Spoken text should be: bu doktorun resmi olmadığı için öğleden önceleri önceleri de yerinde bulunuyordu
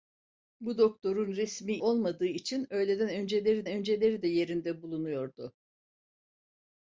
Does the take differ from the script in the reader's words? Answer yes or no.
no